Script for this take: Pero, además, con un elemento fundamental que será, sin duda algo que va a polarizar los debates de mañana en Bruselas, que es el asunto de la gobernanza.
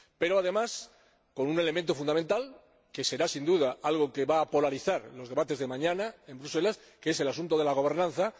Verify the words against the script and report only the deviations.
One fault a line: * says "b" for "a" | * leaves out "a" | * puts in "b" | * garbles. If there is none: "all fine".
all fine